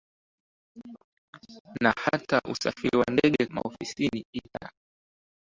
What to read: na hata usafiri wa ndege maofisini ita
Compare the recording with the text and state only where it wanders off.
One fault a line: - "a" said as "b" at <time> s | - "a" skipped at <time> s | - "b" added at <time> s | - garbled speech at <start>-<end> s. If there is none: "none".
none